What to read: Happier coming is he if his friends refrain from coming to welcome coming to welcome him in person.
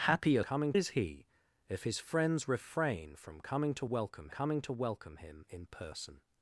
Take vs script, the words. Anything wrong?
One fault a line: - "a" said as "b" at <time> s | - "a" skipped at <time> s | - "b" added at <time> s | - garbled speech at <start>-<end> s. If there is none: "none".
none